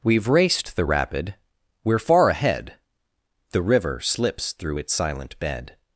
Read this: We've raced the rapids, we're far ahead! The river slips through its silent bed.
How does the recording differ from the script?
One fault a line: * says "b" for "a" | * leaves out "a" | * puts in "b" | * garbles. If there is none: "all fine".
* says "rapid" for "rapids"